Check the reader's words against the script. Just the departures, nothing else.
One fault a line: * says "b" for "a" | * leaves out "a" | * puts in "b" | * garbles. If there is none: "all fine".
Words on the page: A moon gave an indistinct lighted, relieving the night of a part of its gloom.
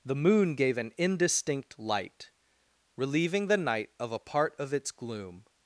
* says "The" for "A"
* says "light" for "lighted"